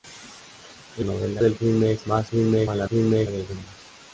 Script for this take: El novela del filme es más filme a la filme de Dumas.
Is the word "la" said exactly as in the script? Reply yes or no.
yes